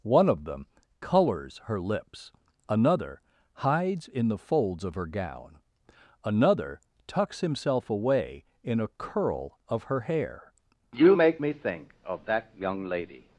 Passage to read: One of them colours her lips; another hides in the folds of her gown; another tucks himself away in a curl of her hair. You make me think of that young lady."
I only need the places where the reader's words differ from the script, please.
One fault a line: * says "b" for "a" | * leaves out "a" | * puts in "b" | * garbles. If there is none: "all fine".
all fine